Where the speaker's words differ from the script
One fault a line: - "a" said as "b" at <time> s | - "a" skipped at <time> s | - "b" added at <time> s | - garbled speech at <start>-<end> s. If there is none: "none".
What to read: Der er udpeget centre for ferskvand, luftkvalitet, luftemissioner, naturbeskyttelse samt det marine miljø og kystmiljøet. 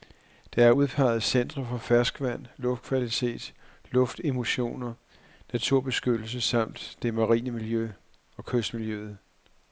none